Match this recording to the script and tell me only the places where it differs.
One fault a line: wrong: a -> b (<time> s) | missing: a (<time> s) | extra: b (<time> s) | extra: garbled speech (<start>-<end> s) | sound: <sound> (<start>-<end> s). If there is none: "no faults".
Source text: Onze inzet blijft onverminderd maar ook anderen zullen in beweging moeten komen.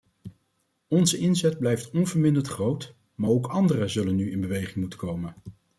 extra: groot (2.5 s)
extra: nu (4.2 s)